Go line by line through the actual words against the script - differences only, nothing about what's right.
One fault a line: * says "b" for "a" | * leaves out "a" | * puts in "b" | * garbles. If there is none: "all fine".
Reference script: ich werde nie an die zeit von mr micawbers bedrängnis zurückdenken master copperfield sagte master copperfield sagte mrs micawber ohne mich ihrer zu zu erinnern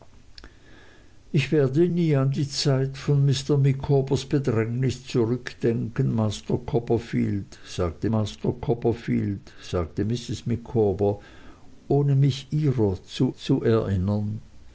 all fine